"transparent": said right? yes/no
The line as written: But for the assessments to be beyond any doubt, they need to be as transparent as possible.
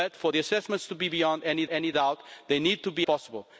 no